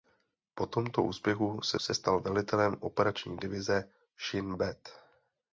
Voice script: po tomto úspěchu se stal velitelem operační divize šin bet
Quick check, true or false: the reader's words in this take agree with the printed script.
false